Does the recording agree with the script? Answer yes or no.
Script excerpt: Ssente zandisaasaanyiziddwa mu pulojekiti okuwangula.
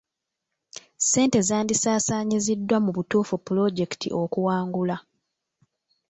no